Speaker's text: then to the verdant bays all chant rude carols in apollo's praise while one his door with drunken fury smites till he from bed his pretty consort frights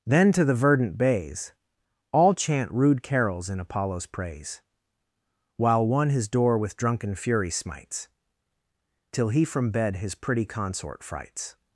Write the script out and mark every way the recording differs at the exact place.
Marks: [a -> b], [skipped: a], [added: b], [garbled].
then to the verdant bays all chant rude carols in apollo's praise while one his door with drunken fury smites till he from bed his pretty consort frights